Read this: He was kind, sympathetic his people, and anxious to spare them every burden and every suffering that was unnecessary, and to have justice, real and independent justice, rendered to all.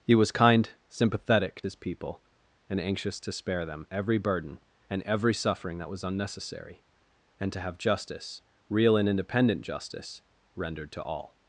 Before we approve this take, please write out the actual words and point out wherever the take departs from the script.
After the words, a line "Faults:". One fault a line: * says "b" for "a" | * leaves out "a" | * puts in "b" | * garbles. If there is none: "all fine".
He was kind, sympathetic his people, and anxious to spare them every burden and every suffering that was unnecessary, and to have justice, real and independent justice, rendered to all.
Faults:
all fine